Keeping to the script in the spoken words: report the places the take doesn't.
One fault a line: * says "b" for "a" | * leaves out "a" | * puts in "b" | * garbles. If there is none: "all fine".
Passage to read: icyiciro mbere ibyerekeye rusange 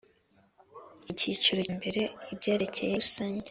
all fine